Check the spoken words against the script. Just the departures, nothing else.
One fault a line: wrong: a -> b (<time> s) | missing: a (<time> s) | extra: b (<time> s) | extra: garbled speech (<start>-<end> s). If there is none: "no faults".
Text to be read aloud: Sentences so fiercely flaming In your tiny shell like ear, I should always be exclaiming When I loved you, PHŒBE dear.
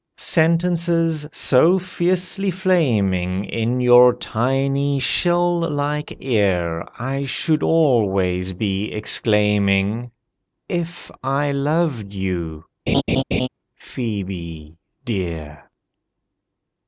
wrong: When -> If (10.7 s)